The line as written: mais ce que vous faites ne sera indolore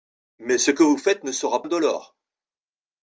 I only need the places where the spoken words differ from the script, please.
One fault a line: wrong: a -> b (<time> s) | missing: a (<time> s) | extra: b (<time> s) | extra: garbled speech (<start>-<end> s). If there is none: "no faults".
no faults